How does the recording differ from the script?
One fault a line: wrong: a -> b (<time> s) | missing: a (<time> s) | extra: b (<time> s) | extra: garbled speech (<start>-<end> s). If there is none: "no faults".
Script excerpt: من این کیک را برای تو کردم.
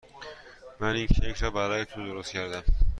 extra: درست (2.0 s)